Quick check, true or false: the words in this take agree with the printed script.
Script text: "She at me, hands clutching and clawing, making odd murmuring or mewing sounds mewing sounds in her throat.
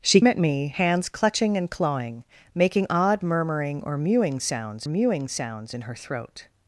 true